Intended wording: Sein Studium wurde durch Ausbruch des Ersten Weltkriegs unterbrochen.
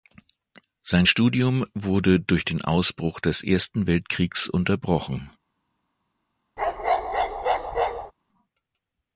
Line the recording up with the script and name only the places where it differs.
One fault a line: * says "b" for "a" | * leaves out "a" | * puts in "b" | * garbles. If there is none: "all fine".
* puts in "den"